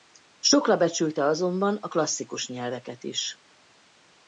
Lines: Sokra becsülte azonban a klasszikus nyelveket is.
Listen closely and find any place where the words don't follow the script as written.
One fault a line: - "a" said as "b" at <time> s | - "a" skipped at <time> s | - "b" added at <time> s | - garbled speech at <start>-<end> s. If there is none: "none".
none